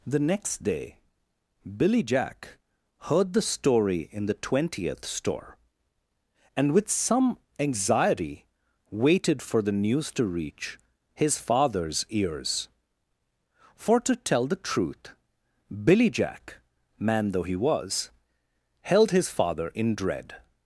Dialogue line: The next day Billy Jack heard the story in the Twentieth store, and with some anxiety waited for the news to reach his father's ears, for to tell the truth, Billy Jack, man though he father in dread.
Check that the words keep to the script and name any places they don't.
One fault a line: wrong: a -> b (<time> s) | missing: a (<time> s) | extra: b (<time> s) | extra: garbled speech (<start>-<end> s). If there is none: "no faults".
extra: was held his (17.6 s)